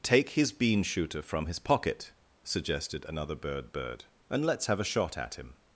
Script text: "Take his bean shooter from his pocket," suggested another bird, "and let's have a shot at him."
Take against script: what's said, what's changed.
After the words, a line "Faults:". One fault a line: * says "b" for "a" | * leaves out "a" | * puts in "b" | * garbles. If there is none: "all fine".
"Take his bean shooter from his pocket," suggested another bird bird, "and let's have a shot at him."
Faults:
* puts in "bird"